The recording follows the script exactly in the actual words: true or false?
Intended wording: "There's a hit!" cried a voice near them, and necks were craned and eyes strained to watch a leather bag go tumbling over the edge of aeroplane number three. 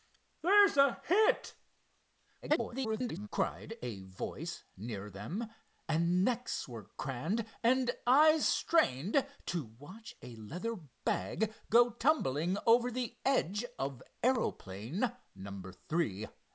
false